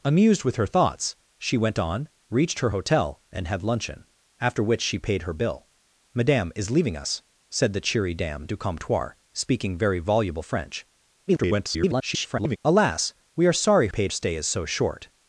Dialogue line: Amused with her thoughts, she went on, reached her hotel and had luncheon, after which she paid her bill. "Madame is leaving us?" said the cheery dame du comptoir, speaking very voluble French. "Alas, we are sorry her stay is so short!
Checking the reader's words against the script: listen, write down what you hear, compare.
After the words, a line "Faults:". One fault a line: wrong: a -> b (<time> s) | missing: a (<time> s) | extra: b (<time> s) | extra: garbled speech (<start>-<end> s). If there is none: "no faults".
Amused with her thoughts, she went on, reached her hotel and had luncheon, after which she paid her bill. "Madame is leaving us?" said the cheery dame du comptoir, speaking very voluble French. [garbled] "Alas, we are sorry paid stay is so short!
Faults:
extra: garbled speech (11.3-12.6 s)
wrong: her -> paid (13.9 s)